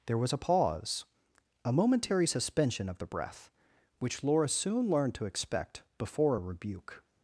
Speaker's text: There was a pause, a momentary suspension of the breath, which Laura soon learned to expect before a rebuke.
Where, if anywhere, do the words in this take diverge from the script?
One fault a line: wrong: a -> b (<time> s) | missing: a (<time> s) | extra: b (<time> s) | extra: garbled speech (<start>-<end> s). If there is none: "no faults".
no faults